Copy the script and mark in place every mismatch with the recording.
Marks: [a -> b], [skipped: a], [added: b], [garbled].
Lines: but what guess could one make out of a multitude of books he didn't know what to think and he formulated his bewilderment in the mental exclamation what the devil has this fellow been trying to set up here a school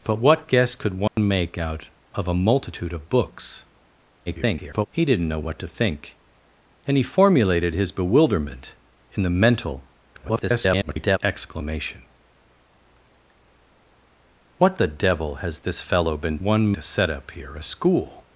but what guess could one make out of a multitude of books [garbled] he didn't know what to think and he formulated his bewilderment in the mental [garbled] exclamation what the devil has this fellow been [trying -> one] to set up here a school